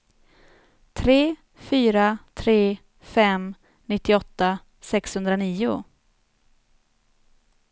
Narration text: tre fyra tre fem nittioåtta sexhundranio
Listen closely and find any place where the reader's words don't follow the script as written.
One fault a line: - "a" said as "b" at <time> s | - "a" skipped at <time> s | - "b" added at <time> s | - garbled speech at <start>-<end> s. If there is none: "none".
none